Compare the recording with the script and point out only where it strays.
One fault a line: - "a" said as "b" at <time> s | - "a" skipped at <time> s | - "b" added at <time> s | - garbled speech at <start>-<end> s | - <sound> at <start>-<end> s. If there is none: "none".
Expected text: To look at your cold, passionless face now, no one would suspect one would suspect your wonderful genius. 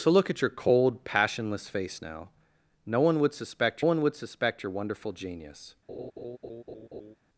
- laugh at 5.9-7.2 s